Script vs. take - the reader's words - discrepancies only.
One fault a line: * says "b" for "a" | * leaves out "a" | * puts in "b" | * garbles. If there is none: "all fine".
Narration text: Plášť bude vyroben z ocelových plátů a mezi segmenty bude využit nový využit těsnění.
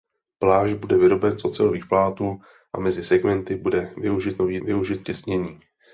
all fine